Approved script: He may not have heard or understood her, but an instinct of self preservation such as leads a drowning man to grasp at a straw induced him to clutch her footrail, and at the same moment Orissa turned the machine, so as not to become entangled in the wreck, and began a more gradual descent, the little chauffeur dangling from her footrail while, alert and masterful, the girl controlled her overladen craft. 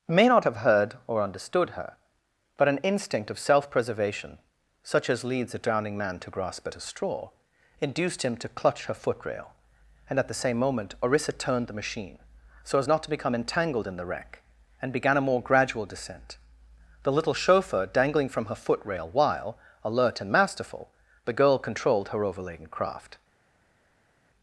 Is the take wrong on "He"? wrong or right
wrong